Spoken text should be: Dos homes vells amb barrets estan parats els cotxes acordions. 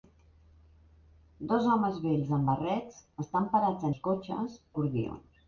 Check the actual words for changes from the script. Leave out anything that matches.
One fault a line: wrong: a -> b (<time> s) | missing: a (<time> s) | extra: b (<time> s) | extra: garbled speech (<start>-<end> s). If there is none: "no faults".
no faults